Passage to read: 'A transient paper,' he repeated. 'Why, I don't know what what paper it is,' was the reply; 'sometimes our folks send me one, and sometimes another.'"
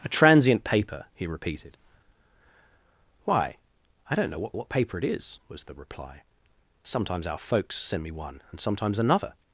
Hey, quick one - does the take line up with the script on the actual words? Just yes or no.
yes